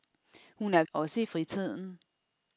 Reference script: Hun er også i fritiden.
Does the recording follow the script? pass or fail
pass